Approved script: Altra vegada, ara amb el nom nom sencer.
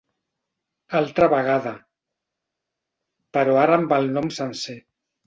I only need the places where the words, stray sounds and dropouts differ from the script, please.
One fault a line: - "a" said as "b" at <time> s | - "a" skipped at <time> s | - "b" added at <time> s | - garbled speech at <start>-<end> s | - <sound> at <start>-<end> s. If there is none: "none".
- "però" added at 3.4 s
- "nom" skipped at 4.4 s